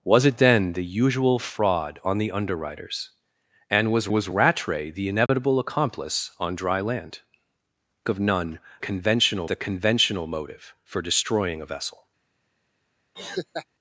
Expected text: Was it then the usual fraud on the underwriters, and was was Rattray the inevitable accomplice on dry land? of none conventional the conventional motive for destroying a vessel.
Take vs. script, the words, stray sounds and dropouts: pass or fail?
fail